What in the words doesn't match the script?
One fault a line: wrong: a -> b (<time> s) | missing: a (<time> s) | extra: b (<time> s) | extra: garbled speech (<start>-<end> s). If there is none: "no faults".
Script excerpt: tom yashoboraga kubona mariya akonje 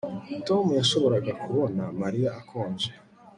no faults